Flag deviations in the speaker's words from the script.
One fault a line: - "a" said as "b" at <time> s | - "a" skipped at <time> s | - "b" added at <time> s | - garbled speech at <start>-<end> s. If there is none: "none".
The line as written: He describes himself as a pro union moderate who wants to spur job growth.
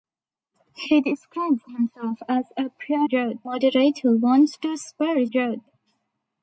- "union" said as "growth" at 3.1 s
- "job" skipped at 5.3 s